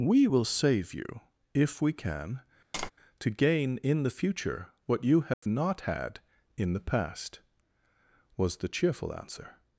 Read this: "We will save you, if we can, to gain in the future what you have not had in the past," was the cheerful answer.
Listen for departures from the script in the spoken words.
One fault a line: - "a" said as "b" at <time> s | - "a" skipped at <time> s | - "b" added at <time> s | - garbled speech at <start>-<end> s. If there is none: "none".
none